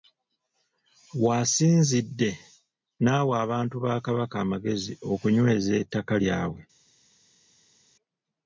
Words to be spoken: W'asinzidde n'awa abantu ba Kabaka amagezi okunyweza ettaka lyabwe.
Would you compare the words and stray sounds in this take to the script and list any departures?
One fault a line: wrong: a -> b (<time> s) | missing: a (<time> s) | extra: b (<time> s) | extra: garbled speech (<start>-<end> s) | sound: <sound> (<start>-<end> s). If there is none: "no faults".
no faults